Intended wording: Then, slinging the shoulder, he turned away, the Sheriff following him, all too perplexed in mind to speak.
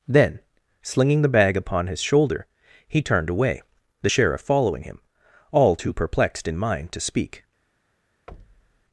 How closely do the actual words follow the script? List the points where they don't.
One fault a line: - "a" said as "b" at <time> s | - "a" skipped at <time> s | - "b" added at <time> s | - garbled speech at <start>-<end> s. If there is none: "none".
- "bag upon his" added at 1.3 s